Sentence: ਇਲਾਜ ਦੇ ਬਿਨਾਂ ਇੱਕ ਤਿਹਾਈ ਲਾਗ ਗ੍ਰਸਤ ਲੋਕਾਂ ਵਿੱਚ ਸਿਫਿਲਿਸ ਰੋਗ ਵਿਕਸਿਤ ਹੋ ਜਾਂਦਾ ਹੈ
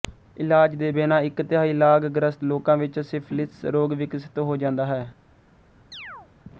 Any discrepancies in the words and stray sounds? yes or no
yes